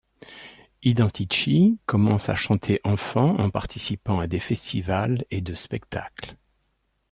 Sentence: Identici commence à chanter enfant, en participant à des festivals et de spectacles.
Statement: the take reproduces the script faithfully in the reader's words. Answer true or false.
true